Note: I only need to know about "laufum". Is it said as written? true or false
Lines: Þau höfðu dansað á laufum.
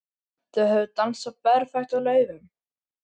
true